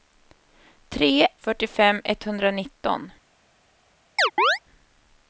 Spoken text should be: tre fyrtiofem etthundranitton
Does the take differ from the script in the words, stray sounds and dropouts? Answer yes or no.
yes